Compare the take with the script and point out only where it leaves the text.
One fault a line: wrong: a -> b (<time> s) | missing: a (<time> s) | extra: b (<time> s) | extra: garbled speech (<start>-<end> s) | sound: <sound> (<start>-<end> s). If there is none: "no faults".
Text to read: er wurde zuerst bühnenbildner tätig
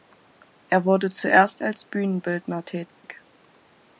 extra: als (1.6 s)
sound: dropout (2.9-3.0 s)